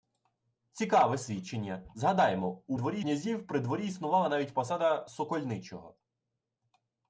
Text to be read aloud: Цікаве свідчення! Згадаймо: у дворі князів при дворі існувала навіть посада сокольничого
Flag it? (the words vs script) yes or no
no